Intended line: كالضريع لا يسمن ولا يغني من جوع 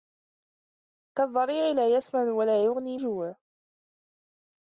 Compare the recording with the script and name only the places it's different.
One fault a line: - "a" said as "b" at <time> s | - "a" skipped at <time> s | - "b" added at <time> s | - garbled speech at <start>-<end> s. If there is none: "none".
- "من" skipped at 3.0 s